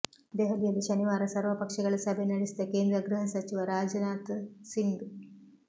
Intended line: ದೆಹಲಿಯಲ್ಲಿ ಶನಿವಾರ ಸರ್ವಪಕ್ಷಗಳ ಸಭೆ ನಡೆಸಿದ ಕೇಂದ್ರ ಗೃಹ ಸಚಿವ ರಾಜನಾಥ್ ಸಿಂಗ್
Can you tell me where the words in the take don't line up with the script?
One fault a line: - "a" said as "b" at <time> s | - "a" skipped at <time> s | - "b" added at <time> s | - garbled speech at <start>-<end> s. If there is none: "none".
none